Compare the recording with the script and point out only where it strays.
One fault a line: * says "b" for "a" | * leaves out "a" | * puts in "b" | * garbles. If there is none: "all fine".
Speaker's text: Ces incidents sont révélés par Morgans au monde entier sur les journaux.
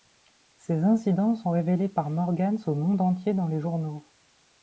* says "dans" for "sur"